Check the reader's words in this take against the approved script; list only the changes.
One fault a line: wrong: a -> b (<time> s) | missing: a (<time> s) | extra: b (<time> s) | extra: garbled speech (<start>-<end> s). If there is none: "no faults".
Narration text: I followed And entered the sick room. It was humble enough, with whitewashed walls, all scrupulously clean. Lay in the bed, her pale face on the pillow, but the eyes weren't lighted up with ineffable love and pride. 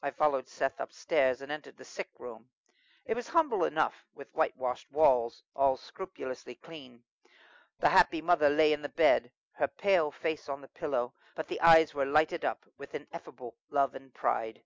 extra: Seth upstairs (0.5 s)
extra: The happy mother (7.8 s)
wrong: weren't -> were (11.9 s)